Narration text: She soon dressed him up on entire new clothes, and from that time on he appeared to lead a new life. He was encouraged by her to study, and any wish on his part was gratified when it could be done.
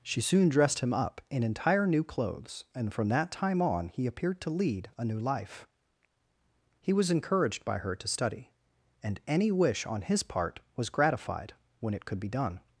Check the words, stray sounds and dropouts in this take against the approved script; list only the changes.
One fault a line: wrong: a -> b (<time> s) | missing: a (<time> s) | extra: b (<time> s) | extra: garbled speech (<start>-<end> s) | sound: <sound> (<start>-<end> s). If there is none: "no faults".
wrong: on -> in (1.3 s)